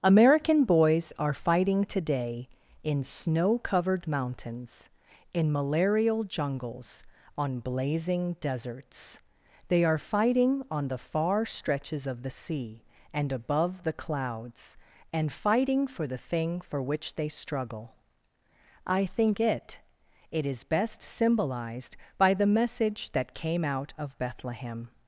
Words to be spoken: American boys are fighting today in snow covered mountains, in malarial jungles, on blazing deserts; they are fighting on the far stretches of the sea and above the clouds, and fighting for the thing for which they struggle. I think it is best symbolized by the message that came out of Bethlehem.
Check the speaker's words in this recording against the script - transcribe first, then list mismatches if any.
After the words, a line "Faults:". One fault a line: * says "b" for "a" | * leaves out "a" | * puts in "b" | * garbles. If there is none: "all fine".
American boys are fighting today in snow covered mountains, in malarial jungles, on blazing deserts; they are fighting on the far stretches of the sea and above the clouds, and fighting for the thing for which they struggle. I think it it is best symbolized by the message that came out of Bethlehem.
Faults:
* puts in "it"